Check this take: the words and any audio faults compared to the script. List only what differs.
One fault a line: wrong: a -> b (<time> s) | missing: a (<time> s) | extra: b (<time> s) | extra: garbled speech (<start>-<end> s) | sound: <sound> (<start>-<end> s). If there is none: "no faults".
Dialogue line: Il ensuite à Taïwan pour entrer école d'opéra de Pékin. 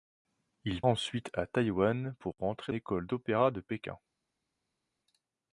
no faults